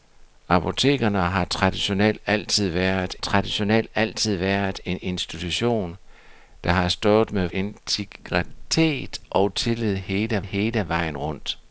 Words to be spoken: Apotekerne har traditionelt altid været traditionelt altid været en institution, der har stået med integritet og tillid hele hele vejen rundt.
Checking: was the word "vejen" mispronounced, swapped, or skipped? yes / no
no